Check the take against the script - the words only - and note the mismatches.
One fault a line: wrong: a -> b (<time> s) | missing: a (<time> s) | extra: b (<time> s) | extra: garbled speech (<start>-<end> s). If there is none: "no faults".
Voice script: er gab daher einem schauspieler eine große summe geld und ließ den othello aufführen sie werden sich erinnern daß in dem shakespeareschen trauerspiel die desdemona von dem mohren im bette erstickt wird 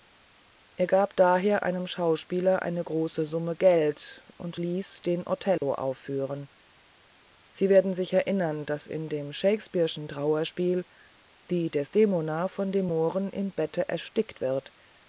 no faults